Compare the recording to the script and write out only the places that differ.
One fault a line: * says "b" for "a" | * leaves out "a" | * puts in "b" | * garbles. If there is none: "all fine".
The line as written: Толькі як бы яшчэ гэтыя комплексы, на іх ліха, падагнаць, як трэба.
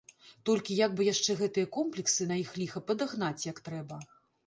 all fine